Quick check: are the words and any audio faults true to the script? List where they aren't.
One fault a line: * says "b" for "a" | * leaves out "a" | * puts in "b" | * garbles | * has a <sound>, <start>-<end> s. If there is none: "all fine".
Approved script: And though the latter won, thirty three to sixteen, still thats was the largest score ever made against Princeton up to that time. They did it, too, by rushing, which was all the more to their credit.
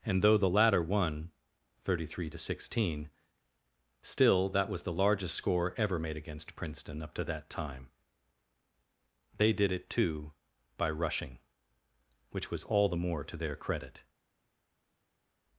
* says "that" for "thats"